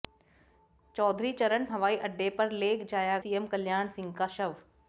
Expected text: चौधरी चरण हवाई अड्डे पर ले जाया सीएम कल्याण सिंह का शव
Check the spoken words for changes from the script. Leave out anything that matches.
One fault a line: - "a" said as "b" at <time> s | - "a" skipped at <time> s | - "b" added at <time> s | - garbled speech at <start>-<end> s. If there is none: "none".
none